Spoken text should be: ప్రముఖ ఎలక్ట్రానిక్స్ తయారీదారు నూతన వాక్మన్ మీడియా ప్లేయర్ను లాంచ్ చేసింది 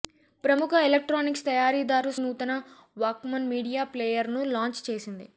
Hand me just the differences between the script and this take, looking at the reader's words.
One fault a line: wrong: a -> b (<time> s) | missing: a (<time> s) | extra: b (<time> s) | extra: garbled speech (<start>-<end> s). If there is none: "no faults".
no faults